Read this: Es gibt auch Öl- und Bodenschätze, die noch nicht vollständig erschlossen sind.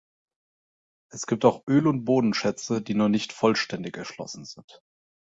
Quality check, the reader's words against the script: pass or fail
pass